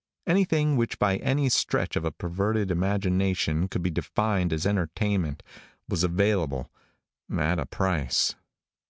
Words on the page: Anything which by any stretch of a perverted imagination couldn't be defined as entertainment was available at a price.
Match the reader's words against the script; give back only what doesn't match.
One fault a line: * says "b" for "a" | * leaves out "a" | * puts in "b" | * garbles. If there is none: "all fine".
* says "could" for "couldn't"